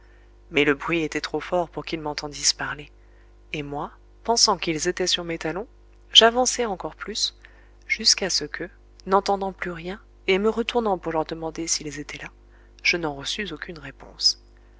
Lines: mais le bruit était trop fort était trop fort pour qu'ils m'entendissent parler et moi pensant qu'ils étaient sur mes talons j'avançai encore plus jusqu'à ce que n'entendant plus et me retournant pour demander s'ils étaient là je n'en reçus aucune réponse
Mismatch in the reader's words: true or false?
true